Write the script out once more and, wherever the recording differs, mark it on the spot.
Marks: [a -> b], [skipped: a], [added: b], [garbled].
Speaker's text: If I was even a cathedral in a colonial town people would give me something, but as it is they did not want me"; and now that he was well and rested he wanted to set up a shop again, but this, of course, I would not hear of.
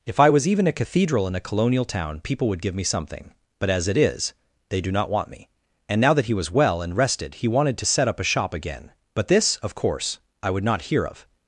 If I was even a cathedral in a colonial town people would give me something, but as it is they [did -> do] not want me"; and now that he was well and rested he wanted to set up a shop again, but this, of course, I would not hear of.